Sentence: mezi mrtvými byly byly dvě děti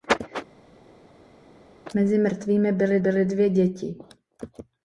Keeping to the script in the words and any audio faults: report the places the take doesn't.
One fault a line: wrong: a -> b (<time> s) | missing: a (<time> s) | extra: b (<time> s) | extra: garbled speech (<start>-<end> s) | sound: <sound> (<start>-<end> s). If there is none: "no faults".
no faults